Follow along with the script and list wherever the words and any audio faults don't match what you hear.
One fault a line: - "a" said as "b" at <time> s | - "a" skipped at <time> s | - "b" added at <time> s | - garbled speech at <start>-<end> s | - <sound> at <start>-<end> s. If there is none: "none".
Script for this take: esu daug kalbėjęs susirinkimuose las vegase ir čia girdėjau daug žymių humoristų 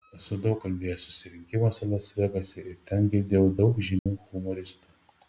- "čia" said as "ten" at 2.9 s
- dropout at 4.0-4.1 s